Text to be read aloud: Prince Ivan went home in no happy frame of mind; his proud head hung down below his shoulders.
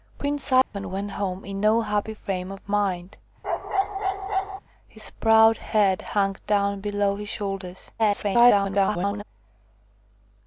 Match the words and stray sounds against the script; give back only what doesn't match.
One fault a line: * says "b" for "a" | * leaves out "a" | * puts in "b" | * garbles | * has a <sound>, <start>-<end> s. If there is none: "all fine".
* has a dropout, 0.6-0.7 s
* has a bark, 3.4-4.6 s
* garbles